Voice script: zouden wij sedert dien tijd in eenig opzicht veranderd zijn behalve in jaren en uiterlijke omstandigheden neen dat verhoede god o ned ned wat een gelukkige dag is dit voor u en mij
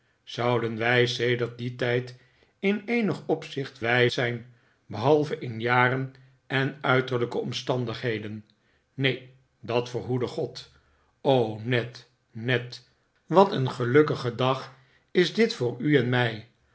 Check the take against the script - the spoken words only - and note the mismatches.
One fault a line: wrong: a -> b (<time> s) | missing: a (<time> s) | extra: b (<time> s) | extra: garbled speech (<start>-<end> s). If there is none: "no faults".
wrong: veranderd -> wij (3.8 s)